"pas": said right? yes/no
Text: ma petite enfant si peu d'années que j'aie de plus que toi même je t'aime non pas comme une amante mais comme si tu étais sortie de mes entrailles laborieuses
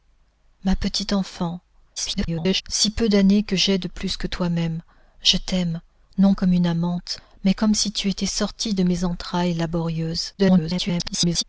no